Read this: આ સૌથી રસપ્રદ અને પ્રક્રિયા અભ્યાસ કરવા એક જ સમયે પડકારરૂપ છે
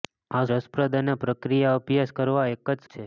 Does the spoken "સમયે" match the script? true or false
false